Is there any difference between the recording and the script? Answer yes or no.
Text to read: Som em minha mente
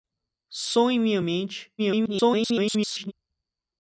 yes